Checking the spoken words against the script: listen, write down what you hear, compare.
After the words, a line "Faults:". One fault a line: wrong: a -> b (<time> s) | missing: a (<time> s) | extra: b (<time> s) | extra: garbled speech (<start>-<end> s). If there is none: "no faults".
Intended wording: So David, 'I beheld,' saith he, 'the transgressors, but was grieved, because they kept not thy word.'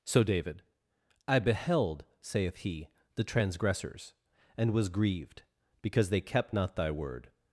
So David, 'I beheld,' saith he, 'the transgressors, and was grieved, because they kept not thy word.'
Faults:
wrong: but -> and (4.6 s)